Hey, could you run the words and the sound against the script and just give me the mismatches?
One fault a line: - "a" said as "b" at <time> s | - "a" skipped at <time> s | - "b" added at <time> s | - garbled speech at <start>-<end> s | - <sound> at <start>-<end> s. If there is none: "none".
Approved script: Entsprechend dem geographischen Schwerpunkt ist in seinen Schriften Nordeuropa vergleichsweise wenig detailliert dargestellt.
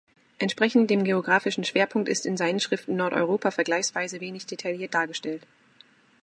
none